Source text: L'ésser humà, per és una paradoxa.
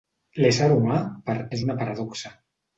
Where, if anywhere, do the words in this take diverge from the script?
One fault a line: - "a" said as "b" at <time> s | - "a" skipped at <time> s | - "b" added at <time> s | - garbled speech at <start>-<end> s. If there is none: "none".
none